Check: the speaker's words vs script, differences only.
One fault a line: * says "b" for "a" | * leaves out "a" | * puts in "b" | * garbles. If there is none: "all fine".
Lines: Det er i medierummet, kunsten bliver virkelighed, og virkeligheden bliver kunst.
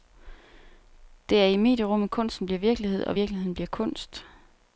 all fine